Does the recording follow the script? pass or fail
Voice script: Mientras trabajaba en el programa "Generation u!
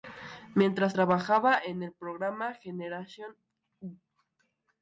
pass